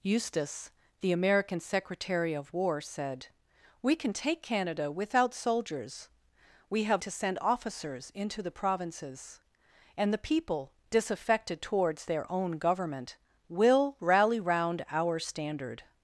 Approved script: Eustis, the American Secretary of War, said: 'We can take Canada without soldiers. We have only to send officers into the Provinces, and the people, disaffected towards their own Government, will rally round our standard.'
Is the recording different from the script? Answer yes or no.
yes